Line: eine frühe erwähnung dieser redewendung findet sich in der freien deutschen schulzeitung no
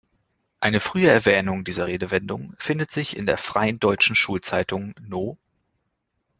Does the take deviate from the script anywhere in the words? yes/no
no